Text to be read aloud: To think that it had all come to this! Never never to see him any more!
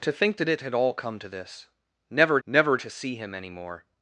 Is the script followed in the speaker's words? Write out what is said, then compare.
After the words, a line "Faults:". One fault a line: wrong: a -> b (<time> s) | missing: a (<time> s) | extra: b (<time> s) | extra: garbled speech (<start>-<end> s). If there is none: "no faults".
To think that it had all come to this! Never never to see him any more!
Faults:
no faults